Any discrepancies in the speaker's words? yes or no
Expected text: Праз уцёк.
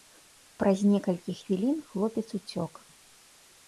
yes